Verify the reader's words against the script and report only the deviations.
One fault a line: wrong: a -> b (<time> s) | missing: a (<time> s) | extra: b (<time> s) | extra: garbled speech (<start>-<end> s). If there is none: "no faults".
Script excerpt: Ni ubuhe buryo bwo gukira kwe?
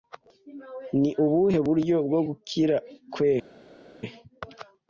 no faults